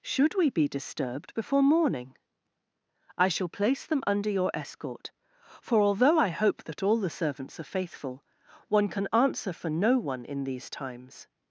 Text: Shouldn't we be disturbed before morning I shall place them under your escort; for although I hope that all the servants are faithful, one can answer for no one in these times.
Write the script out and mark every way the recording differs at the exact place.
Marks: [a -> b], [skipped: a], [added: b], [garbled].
[Shouldn't -> Should] we be disturbed before morning I shall place them under your escort; for although I hope that all the servants are faithful, one can answer for no one in these times.